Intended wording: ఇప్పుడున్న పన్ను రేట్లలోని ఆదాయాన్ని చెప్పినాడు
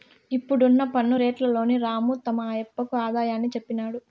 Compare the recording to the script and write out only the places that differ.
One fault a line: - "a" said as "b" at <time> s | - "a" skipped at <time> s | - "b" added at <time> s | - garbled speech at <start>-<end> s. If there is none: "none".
- "రాము తమ ఆయప్పకు" added at 1.8 s